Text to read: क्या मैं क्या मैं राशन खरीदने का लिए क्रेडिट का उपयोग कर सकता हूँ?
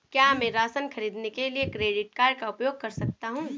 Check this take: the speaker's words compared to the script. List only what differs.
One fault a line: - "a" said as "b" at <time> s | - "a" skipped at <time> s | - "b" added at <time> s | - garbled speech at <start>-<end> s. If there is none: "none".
- "क्या मैं" skipped at 0.5 s
- "का" said as "के" at 1.3 s
- "कार्ड" added at 2.2 s